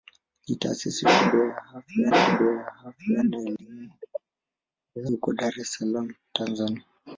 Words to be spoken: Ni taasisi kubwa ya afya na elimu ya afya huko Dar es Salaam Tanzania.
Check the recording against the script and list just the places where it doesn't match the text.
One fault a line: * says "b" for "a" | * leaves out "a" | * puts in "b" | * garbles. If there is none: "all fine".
* puts in "kubwa ya afya"
* leaves out "afya"